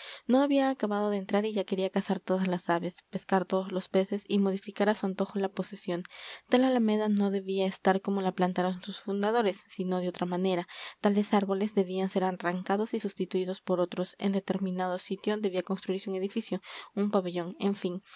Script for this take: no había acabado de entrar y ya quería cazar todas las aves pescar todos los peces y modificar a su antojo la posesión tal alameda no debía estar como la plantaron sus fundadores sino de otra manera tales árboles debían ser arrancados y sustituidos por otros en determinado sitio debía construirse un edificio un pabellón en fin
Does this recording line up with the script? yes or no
yes